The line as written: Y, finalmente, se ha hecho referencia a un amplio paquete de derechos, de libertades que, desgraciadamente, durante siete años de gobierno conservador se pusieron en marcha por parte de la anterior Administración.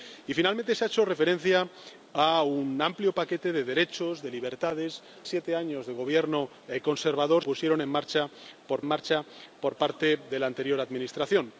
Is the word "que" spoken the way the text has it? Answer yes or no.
no